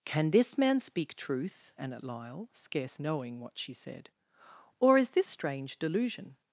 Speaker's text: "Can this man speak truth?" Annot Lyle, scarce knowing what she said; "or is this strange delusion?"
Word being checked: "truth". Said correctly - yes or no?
yes